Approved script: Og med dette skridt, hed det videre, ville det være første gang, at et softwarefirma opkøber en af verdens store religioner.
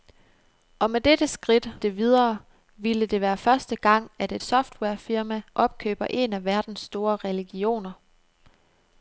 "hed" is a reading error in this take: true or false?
true